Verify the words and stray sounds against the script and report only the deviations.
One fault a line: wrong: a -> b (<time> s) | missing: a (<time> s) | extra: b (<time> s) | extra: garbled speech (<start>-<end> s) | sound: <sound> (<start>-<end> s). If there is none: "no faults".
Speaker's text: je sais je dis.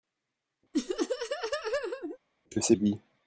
sound: laugh (0.7-2.2 s)